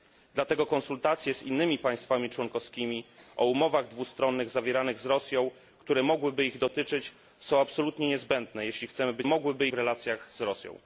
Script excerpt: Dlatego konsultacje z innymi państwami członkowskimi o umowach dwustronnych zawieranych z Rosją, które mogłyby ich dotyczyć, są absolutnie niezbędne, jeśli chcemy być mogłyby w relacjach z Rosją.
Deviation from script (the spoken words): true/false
false